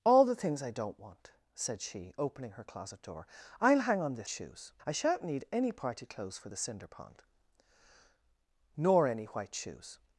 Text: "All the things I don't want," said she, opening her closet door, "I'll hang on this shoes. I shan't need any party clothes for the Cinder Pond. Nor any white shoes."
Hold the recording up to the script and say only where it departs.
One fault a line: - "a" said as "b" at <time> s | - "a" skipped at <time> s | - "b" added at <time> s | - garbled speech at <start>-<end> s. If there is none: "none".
none